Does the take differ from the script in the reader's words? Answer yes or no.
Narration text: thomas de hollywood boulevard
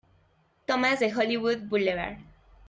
no